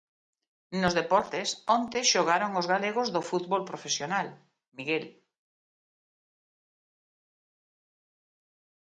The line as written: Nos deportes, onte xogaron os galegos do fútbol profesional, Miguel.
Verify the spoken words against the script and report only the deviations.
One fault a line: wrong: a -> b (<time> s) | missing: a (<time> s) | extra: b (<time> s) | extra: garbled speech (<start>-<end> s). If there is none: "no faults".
no faults